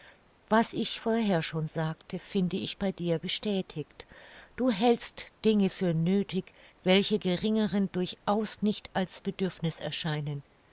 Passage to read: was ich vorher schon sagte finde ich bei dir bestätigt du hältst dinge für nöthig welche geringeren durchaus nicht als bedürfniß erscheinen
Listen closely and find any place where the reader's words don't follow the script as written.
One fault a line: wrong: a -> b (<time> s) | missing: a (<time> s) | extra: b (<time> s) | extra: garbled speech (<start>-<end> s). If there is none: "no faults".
no faults